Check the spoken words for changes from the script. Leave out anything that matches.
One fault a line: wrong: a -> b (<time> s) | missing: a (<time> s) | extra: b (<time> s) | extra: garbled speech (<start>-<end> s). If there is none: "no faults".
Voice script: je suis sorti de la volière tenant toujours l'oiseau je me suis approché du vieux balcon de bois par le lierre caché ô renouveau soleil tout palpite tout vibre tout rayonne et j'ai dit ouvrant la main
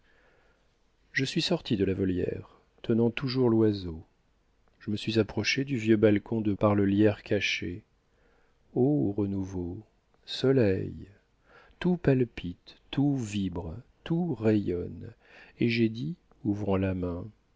missing: bois (6.5 s)